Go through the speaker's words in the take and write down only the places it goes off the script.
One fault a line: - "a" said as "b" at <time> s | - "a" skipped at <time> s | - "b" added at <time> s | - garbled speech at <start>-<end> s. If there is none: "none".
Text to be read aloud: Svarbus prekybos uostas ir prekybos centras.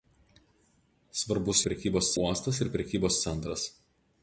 none